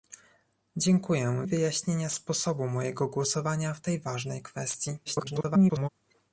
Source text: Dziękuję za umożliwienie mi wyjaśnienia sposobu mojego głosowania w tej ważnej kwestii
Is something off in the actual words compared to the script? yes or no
yes